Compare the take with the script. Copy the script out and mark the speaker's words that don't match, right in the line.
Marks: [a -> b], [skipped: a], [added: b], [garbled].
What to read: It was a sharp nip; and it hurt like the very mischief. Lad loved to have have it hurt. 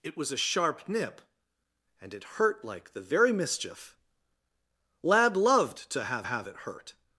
It was a sharp nip; and it hurt like the very mischief. Lad loved to have have it hurt.